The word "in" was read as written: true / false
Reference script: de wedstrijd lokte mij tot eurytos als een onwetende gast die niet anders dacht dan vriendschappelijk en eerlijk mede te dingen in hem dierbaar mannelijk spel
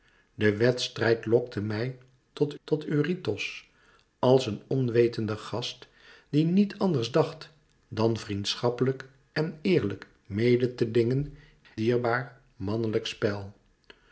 false